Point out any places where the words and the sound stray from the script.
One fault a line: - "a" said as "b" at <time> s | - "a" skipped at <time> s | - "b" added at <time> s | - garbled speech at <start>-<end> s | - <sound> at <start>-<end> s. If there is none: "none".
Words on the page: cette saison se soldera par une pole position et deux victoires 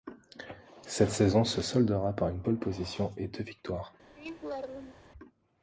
- laugh at 4.2-5.1 s